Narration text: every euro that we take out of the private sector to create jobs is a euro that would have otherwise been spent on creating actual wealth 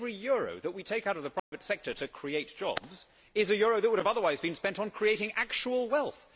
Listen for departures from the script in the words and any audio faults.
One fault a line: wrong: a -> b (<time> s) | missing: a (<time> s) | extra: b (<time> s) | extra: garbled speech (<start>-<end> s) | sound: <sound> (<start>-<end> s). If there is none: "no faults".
sound: dropout (1.4-1.5 s)